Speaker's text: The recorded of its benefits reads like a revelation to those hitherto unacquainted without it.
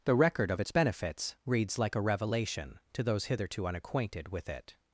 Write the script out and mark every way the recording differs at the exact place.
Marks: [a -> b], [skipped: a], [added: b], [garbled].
The [recorded -> record] of its benefits reads like a revelation to those hitherto unacquainted [without -> with] it.